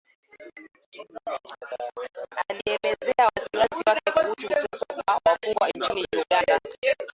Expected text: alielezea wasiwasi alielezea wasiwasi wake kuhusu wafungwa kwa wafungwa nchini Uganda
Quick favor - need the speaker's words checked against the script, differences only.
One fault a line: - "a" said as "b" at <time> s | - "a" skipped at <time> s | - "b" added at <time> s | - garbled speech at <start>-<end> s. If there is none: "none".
- "alielezea wasiwasi" skipped at 3.8 s
- "wafungwa" said as "kuteswa" at 4.3 s